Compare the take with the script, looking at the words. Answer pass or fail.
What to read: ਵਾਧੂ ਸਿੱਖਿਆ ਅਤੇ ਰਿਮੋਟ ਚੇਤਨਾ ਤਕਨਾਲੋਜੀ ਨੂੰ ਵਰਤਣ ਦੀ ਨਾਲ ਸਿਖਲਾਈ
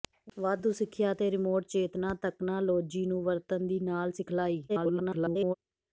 fail